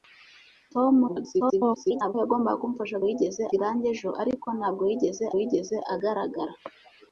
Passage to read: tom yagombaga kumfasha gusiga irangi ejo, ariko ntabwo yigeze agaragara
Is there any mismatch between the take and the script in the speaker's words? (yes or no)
yes